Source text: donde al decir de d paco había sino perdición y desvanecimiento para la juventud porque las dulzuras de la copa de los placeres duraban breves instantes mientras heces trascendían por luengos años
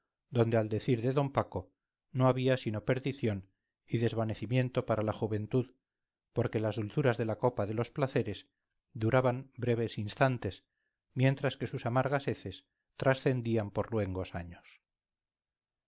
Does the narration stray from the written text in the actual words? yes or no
yes